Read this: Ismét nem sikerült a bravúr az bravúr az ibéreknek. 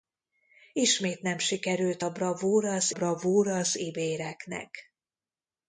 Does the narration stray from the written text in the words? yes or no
no